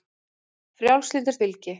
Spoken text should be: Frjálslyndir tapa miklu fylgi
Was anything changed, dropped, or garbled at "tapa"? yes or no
yes